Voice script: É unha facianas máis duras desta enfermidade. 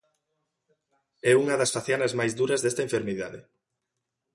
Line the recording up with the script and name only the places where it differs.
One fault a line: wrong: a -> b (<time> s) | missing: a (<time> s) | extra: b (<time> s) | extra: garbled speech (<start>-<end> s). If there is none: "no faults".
extra: das (1.6 s)